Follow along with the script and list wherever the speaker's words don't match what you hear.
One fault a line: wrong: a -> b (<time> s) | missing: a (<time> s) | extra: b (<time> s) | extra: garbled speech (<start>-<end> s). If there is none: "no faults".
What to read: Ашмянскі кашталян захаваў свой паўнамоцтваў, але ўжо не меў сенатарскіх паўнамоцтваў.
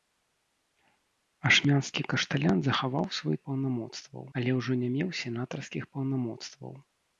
no faults